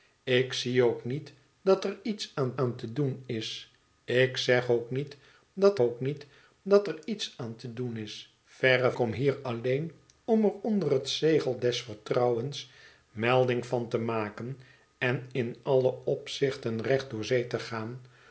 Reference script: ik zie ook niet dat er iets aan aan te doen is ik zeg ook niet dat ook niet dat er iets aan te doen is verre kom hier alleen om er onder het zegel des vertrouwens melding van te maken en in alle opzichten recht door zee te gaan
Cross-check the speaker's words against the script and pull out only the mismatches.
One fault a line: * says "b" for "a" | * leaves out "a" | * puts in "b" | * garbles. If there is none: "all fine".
all fine